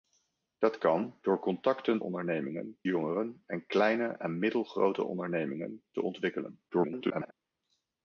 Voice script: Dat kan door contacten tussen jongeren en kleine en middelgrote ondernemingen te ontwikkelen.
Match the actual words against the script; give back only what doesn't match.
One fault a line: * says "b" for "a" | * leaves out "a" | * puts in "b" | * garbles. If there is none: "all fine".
* says "ondernemingen" for "tussen"
* garbles